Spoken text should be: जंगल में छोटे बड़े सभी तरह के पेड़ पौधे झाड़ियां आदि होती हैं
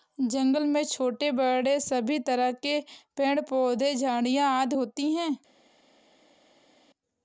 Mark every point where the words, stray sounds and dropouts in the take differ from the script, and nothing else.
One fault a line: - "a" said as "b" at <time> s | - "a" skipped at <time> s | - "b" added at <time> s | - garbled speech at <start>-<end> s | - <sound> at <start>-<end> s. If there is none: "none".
none